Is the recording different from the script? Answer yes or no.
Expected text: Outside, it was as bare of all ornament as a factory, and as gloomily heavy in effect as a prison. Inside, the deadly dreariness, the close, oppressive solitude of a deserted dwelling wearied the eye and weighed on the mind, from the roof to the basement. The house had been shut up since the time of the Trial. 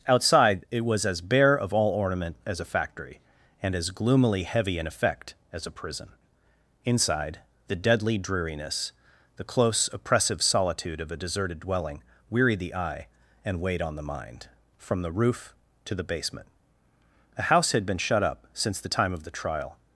yes